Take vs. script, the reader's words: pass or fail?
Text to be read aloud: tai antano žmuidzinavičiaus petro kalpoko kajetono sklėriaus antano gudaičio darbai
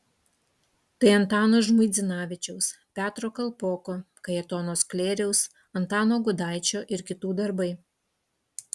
fail